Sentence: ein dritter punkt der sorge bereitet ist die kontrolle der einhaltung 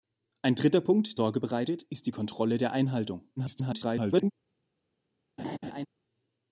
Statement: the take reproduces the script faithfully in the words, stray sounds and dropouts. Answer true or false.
false